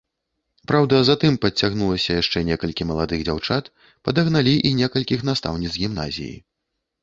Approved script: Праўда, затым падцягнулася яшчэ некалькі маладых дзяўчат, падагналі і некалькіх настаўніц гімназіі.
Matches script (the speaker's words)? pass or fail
pass